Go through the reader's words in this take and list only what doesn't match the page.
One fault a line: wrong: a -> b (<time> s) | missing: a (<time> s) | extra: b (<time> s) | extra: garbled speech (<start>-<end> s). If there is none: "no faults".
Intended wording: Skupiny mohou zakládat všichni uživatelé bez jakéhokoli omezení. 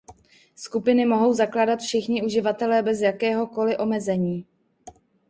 no faults